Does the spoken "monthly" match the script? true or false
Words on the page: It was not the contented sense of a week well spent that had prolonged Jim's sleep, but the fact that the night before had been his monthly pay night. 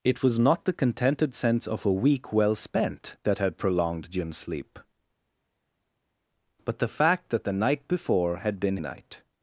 false